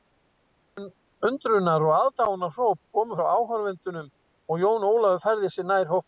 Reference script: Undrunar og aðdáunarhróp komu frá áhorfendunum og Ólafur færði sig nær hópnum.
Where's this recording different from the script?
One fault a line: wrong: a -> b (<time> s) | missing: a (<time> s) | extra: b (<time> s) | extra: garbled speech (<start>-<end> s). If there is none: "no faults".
extra: Jón (4.6 s)